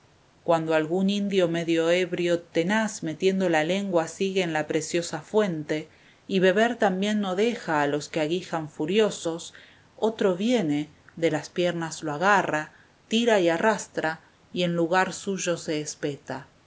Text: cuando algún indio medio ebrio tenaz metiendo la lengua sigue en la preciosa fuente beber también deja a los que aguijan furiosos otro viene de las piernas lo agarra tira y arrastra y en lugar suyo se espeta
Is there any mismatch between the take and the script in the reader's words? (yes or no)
yes